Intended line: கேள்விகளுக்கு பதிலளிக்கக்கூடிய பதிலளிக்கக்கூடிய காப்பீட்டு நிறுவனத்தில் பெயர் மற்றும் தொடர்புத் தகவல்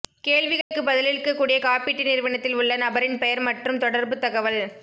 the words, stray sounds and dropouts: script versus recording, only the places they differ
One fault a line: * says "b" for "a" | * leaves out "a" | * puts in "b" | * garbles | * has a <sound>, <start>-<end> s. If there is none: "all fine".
* has a dropout, 0.6-0.7 s
* leaves out "பதிலளிக்கக்கூடிய"
* puts in "உள்ள நபரின்"